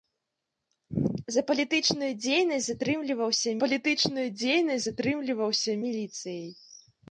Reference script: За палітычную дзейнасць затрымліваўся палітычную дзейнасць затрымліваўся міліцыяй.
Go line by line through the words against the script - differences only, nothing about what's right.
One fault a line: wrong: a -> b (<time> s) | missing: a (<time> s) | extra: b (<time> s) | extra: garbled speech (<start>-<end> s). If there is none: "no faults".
no faults